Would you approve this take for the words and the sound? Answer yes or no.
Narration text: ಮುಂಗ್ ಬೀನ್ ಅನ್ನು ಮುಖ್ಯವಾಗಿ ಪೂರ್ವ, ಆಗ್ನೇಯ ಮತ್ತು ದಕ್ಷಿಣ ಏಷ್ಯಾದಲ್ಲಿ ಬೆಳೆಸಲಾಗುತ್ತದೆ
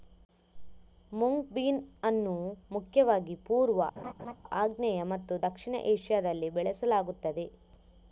no